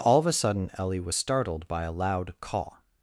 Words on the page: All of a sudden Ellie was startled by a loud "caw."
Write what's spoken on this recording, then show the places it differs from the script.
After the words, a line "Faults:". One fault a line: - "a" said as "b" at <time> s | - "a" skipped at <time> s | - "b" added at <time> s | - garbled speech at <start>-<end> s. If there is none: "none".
All of a sudden Ellie was startled by a loud "caw."
Faults:
none